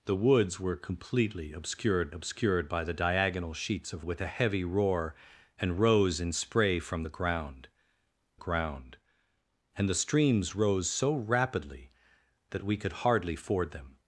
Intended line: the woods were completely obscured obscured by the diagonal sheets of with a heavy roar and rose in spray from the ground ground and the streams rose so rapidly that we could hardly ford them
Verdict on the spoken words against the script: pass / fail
pass